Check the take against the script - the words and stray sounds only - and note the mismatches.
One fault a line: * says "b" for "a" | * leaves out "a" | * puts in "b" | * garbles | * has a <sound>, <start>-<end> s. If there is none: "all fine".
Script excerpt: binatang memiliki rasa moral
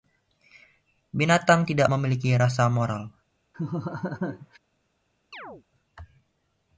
* puts in "tidak"
* has a laugh, 3.5-4.6 s
* has a chirp, 5.3-5.6 s